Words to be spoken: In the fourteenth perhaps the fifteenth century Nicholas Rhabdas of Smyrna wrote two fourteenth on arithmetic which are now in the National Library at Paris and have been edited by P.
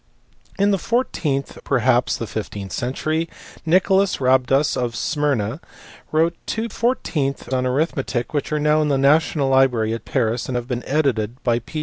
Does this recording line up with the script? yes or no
yes